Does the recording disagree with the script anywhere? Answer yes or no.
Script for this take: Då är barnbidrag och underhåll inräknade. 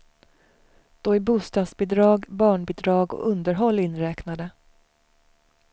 yes